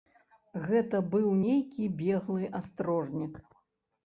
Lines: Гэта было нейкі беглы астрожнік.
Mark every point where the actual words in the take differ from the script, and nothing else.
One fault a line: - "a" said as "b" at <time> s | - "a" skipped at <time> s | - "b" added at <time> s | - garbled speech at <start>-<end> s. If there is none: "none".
- "было" said as "быў" at 1.1 s